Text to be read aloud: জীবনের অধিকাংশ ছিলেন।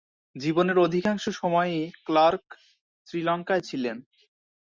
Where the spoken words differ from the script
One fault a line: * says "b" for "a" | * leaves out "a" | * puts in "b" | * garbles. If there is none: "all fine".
* puts in "সময়ই ক্লার্ক শ্রীলঙ্কায়"